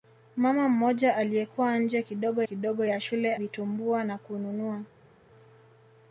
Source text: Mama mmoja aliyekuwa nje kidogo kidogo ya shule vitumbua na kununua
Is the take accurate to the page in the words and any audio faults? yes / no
yes